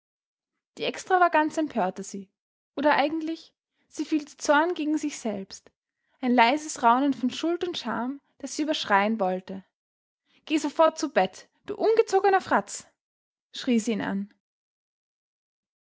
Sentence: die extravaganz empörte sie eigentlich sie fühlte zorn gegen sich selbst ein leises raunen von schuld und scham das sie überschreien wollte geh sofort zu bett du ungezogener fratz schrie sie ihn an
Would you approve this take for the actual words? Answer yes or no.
no